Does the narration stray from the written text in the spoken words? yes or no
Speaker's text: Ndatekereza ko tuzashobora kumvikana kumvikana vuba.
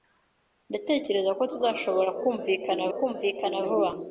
no